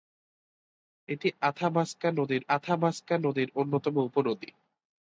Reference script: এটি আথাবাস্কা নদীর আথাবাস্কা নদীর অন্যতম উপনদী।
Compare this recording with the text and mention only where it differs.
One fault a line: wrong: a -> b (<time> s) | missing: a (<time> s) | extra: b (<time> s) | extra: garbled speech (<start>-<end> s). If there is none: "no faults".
no faults